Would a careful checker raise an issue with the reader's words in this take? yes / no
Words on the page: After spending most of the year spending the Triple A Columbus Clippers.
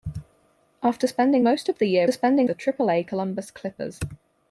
no